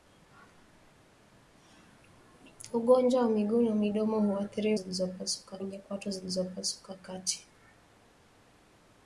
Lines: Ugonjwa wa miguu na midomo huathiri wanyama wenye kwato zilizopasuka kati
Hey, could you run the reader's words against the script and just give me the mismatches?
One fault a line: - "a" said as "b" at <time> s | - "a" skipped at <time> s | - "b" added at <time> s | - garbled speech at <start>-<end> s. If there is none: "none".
- "wanyama" said as "zilizopasuka" at 4.7 s